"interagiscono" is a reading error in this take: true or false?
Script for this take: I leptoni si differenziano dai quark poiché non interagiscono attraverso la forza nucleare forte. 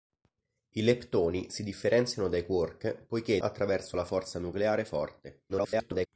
true